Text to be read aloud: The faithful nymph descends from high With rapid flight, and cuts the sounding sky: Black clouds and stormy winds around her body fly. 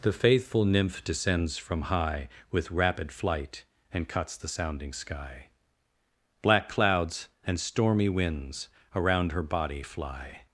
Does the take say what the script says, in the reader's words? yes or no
yes